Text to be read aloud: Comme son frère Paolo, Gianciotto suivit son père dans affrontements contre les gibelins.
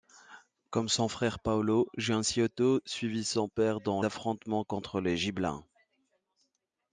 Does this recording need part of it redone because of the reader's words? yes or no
no